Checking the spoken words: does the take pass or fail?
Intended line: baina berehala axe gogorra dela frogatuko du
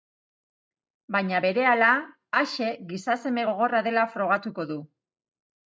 fail